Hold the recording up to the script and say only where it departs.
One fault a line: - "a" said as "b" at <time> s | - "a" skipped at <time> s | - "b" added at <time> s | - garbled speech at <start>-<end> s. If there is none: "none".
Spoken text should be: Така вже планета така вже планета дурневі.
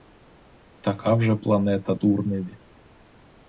- "така вже планета" skipped at 1.9 s